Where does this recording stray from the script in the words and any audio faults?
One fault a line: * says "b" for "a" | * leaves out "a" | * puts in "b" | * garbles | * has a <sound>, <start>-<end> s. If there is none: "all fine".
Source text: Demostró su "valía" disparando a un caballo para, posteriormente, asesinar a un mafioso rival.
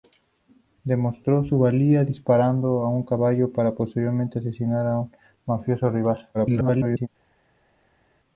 * garbles